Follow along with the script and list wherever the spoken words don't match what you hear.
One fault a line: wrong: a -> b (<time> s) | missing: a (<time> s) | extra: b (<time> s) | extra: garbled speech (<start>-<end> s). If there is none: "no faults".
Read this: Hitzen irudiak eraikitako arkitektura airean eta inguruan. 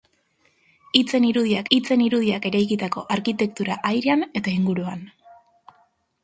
extra: hitzen irudiak (1.8 s)